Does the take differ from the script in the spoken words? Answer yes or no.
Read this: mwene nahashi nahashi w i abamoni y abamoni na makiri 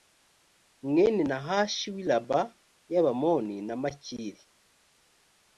yes